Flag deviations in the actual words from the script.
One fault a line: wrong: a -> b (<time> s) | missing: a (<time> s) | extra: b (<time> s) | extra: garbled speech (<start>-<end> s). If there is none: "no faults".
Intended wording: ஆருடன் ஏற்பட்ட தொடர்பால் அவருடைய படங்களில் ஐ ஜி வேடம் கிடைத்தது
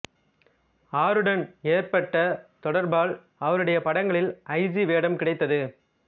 no faults